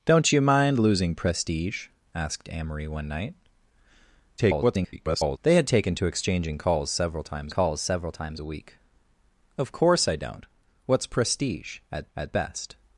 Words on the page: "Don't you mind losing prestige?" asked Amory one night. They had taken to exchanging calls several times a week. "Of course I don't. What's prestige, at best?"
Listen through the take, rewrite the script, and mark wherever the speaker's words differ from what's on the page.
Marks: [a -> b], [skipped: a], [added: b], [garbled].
"Don't you mind losing prestige?" asked Amory one night. [garbled] They had taken to exchanging calls several times [added: calls several times] a week. "Of course I don't. What's prestige, at [added: at] best?"